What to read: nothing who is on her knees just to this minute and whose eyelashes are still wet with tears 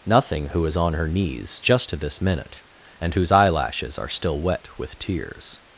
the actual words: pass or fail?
pass